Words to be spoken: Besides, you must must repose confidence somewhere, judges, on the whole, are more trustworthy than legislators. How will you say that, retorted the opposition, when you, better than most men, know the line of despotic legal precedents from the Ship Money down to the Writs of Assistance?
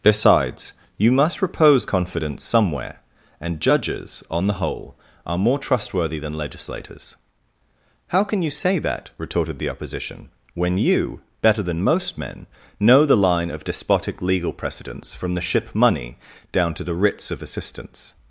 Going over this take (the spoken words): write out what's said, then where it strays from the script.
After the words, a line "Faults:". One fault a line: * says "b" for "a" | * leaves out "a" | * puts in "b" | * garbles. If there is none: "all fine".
Besides, you must repose confidence somewhere, and judges, on the whole, are more trustworthy than legislators. How can you say that, retorted the opposition, when you, better than most men, know the line of despotic legal precedents from the Ship Money down to the Writs of Assistance?
Faults:
* leaves out "must"
* puts in "and"
* says "can" for "will"